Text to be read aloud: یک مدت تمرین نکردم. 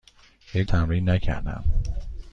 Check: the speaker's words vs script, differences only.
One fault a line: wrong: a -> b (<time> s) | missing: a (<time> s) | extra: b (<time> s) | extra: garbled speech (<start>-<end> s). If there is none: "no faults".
missing: مدت (0.7 s)